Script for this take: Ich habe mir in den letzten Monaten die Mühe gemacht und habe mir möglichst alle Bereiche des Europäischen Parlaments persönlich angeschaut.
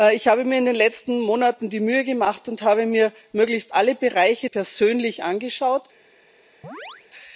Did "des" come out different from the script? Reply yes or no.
yes